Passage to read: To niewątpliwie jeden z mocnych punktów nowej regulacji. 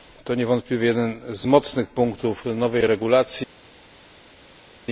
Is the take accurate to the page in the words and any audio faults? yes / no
yes